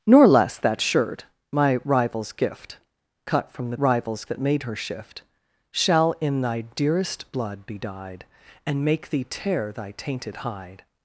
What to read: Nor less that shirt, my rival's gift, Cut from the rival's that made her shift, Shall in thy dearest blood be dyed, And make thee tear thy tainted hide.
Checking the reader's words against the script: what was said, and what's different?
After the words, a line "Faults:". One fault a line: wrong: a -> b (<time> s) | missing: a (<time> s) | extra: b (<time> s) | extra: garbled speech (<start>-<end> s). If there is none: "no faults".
Nor less that shirt, my rival's gift, Cut from the rival's that made her shift, Shall in thy dearest blood be dyed, And make thee tear thy tainted hide.
Faults:
no faults